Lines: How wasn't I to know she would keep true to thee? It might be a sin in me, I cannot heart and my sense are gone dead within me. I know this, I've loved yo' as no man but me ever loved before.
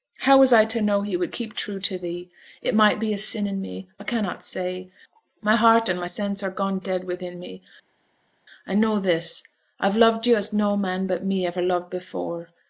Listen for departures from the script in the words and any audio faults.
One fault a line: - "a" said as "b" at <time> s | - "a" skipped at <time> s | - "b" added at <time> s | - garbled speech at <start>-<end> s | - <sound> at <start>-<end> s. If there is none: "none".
- "wasn't" said as "was" at 0.4 s
- "she" said as "he" at 1.0 s
- "say my" added at 4.4 s